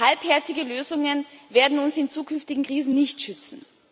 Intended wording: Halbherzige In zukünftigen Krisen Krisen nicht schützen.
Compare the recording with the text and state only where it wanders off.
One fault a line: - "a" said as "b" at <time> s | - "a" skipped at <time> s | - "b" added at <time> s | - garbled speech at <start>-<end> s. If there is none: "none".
- "Lösungen werden uns" added at 0.6 s
- "Krisen" skipped at 2.9 s